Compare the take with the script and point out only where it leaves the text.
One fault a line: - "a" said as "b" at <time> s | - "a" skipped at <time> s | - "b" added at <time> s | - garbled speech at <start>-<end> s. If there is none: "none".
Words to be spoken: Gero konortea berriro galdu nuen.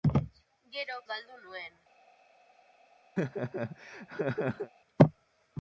- "konortea berriro" skipped at 0.9 s